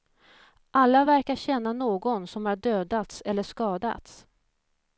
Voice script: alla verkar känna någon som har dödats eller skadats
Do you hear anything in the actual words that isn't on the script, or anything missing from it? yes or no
no